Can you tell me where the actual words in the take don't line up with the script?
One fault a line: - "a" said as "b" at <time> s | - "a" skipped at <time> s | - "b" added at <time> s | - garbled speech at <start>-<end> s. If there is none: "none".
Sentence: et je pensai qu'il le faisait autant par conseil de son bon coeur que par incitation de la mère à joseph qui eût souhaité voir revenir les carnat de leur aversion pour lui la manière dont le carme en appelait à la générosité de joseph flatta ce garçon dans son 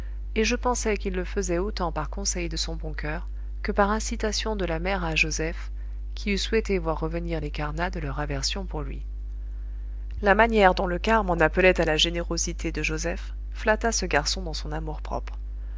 none